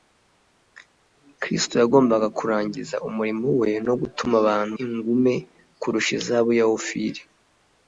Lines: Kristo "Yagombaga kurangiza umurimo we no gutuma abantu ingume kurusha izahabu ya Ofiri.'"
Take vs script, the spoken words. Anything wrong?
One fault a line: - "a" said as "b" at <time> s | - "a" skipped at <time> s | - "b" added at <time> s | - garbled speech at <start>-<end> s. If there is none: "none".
none